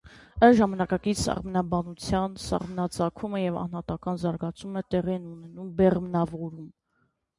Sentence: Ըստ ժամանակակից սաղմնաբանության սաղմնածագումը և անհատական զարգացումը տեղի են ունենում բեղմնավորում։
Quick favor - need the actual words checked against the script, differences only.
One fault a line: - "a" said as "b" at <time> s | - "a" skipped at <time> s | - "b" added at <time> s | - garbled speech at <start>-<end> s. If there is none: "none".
none